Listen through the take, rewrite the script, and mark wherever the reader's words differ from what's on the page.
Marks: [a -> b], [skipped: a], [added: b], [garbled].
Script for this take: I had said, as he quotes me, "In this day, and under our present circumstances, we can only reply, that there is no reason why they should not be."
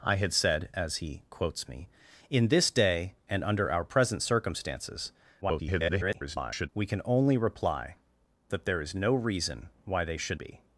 I had said, as he quotes me, "In this day, and under our present circumstances, [garbled] we can only reply, that there is no reason why they should [skipped: not] be."